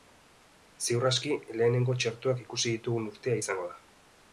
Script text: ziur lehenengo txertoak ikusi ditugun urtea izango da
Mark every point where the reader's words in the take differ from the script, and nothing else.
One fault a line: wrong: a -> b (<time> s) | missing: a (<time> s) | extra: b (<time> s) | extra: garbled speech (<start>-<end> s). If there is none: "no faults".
extra: aski (1.1 s)